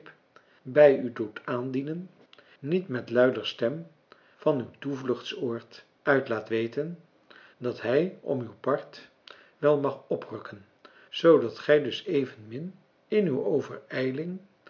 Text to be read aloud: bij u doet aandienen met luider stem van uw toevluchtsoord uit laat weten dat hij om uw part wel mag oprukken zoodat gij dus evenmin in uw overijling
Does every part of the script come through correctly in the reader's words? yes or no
no